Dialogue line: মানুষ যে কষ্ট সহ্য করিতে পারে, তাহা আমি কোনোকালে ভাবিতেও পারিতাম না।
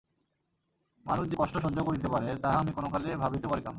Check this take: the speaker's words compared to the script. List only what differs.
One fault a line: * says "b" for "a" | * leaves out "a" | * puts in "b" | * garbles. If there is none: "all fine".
all fine